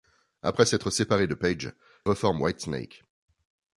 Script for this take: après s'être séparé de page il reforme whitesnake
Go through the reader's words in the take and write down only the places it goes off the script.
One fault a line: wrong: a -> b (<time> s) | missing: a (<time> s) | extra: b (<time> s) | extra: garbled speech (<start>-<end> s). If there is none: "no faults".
missing: il (1.7 s)